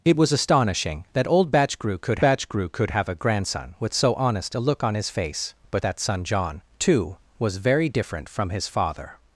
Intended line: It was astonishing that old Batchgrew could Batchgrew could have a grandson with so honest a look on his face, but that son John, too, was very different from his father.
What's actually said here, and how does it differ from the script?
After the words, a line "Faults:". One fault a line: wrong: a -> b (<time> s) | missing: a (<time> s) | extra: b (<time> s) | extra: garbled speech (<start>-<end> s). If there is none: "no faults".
It was astonishing that old Batchgrew could Batchgrew could have a grandson with so honest a look on his face, but that son John, too, was very different from his father.
Faults:
no faults